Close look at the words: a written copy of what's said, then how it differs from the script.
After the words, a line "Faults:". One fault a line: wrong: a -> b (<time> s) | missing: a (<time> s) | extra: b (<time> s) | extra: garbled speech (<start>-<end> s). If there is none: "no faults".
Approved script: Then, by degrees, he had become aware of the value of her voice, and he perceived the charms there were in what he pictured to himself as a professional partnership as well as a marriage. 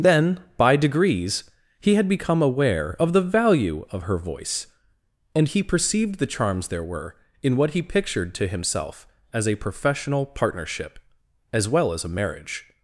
Then, by degrees, he had become aware of the value of her voice, and he perceived the charms there were in what he pictured to himself as a professional partnership as well as a marriage.
Faults:
no faults